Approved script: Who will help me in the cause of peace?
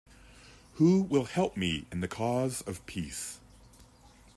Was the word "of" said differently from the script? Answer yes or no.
no